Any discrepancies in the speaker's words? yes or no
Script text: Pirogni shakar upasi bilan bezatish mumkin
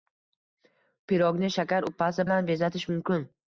no